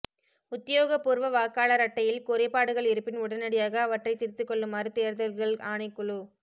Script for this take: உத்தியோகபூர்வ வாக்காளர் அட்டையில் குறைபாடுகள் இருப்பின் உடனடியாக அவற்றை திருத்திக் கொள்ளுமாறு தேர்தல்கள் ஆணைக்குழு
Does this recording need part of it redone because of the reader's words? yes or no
no